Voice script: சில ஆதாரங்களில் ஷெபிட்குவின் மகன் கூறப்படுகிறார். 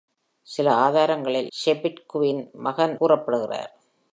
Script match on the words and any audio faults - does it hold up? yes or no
yes